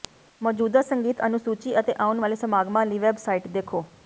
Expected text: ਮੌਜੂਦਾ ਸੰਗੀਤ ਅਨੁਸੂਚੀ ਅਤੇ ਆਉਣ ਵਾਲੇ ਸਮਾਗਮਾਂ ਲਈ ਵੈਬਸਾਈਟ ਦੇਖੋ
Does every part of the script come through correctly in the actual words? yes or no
yes